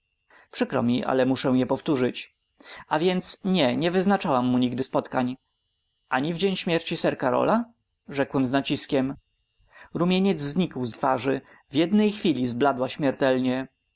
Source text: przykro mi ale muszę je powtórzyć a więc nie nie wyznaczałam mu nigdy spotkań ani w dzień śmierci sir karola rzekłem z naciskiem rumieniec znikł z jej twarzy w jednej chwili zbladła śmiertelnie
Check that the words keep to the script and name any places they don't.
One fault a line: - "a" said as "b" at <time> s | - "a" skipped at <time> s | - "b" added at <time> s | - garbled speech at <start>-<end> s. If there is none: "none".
- "jej" skipped at 10.9 s